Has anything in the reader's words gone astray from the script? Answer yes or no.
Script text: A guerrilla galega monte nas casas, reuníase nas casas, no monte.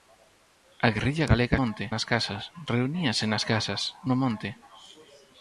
no